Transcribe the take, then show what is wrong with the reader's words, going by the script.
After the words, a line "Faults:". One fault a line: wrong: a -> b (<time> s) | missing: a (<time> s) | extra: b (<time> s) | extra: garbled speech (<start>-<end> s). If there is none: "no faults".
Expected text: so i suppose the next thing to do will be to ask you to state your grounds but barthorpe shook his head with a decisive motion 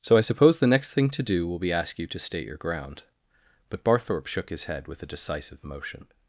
so i suppose the next thing to do will be ask you to state your ground but barthorpe shook his head with a decisive motion
Faults:
missing: to (1.7 s)
wrong: grounds -> ground (2.6 s)